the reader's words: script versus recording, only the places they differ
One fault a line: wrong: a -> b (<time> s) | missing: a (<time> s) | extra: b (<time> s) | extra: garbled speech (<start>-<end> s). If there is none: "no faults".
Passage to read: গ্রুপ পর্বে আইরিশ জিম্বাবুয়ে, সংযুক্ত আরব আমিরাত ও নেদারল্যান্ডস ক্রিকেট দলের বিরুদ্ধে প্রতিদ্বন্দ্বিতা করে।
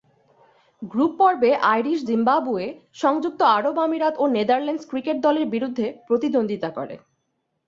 no faults